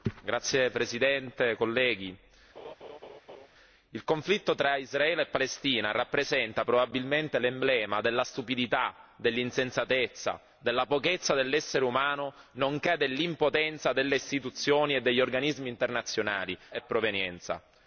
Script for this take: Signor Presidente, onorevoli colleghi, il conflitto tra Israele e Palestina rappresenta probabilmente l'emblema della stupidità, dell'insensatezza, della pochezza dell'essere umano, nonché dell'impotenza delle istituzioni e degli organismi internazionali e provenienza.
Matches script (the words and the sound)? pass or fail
fail